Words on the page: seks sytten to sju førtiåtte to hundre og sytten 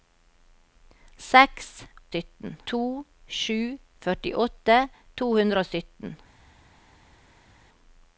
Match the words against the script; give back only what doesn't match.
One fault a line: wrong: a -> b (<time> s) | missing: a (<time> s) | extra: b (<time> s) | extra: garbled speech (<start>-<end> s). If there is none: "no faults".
no faults